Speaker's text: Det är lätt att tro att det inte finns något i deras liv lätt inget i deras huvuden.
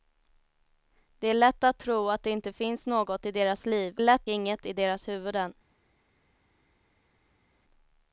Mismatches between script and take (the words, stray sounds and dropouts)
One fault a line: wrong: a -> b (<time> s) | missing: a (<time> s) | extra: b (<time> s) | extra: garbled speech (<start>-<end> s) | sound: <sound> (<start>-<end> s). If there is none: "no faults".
no faults